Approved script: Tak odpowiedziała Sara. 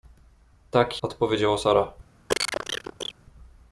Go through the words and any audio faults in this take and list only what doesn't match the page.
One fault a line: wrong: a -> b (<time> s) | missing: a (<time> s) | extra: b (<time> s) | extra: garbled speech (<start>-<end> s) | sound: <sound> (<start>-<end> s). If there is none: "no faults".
sound: cough (2.3-3.1 s)